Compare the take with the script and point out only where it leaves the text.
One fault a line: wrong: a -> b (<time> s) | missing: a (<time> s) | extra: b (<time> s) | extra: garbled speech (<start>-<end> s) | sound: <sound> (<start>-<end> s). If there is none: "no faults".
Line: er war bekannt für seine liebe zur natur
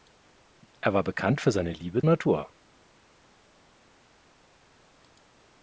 missing: zur (2.0 s)